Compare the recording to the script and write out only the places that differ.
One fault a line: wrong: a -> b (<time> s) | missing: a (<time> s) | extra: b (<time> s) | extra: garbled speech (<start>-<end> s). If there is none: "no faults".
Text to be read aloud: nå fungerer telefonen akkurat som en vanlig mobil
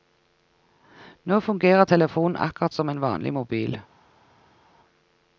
no faults